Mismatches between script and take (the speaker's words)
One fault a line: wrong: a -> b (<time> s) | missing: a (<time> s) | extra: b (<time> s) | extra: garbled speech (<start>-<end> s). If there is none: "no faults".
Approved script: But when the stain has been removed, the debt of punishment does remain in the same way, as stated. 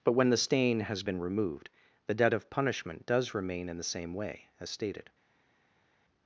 no faults